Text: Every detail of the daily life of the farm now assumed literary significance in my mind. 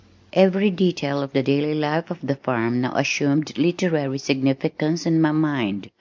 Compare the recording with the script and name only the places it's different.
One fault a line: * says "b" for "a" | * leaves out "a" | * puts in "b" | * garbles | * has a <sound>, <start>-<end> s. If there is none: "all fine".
all fine